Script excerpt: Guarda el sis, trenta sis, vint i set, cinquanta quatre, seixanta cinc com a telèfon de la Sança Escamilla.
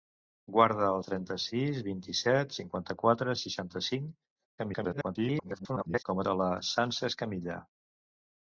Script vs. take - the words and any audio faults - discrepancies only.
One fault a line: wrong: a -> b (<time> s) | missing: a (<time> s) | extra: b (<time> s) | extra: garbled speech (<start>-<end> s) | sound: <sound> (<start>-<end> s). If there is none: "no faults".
missing: sis (1.0 s)
extra: garbled speech (4.6-6.0 s)
missing: telèfon (6.2 s)